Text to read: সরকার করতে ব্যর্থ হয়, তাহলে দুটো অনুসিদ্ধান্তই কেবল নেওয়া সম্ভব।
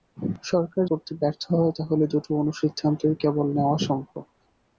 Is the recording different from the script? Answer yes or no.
no